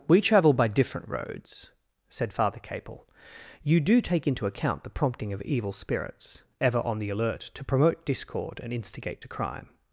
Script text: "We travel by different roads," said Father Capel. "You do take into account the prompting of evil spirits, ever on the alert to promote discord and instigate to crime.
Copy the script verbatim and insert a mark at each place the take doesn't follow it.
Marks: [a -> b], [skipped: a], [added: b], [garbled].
"We travel by different roads," said Father Capel. "You do take into account the prompting of evil spirits, ever on the alert to promote discord and instigate to crime.